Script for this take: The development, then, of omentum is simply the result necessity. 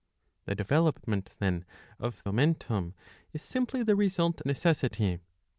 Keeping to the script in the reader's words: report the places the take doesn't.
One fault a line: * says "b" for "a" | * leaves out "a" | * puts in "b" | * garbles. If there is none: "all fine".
all fine